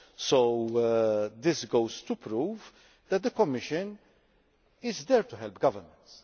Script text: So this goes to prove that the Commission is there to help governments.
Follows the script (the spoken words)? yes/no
yes